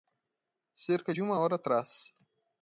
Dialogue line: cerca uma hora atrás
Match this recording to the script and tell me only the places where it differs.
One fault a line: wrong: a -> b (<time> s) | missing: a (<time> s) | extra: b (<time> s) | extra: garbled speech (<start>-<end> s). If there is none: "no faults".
extra: de (1.1 s)